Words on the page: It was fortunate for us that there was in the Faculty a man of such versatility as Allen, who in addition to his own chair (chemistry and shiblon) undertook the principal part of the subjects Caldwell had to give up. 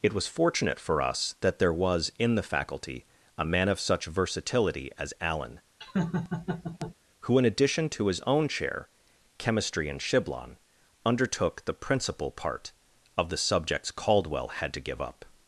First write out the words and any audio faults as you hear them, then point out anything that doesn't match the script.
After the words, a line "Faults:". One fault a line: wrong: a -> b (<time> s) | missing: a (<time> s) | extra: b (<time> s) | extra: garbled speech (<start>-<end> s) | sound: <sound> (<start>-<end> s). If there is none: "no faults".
It was fortunate for us that there was in the Faculty a man of such versatility as Allen, who in addition to his own chair (chemistry and shiblon) undertook the principal part of the subjects Caldwell had to give up.
Faults:
sound: laugh (5.8-7.0 s)